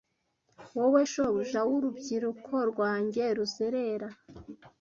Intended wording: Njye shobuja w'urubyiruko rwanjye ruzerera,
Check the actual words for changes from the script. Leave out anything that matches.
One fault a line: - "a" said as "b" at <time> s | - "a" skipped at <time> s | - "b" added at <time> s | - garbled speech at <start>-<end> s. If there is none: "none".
- "Njye" said as "Wowe" at 0.8 s